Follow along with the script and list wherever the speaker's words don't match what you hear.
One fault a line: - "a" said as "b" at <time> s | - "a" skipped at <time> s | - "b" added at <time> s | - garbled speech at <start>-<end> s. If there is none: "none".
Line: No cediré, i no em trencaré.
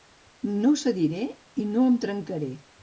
none